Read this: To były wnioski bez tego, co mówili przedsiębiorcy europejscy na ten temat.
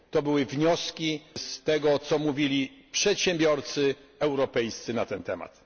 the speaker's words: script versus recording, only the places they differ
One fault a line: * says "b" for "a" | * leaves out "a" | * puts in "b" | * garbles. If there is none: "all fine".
* says "z" for "bez"